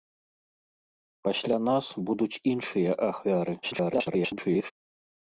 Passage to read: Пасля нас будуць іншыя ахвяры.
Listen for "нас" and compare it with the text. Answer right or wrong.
right